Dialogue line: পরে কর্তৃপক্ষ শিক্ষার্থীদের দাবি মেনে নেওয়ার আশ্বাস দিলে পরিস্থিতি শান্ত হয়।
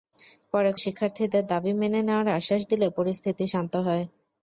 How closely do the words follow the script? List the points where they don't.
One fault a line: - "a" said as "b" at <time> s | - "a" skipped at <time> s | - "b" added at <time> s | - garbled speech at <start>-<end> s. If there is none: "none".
- "কর্তৃপক্ষ" skipped at 0.7 s